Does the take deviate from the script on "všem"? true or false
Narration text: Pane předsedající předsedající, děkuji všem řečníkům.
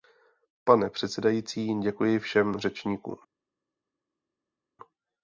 false